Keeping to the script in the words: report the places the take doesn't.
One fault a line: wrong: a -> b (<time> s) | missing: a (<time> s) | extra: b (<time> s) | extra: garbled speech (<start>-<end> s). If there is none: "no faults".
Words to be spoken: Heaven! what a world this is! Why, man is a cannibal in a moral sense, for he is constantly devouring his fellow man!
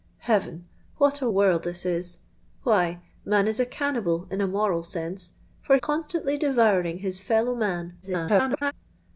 missing: he is (5.8 s)
extra: garbled speech (8.0-8.7 s)